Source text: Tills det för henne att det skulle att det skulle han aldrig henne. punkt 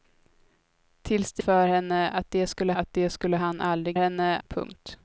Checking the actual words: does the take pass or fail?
pass